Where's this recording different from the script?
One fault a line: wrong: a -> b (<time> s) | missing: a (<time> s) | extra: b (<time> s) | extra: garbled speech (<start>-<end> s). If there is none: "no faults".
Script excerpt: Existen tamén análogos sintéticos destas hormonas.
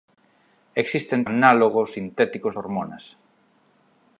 missing: tamén (1.2 s)
missing: destas (2.5 s)